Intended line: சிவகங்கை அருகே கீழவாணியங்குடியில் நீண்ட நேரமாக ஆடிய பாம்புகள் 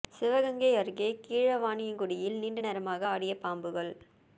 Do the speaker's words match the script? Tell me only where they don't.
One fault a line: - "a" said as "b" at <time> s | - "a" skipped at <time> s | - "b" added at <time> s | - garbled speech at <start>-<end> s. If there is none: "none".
none